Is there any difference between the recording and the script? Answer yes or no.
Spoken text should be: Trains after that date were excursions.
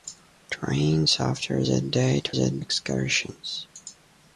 yes